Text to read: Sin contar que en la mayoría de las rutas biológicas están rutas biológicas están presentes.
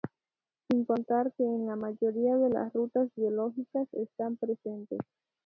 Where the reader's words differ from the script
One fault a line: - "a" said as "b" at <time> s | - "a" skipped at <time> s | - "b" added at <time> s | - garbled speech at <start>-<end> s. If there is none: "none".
- "rutas biológicas están" skipped at 4.4 s